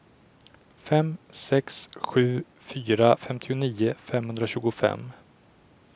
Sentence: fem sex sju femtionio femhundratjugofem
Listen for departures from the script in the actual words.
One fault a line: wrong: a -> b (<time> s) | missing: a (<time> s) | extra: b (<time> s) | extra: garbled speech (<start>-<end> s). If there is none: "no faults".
extra: fyra (2.7 s)